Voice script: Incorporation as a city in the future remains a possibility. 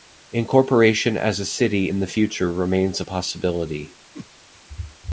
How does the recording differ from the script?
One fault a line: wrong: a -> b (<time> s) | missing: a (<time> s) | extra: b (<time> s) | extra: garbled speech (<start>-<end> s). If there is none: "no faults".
no faults